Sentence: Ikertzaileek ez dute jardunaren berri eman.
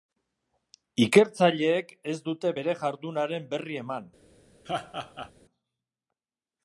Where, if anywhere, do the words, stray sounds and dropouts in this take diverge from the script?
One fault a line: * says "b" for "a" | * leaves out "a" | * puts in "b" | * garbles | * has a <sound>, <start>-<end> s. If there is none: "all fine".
* puts in "bere"
* has a laugh, 4.6-5.3 s